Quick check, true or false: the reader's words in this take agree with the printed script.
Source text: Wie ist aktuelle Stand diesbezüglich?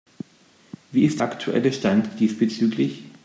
true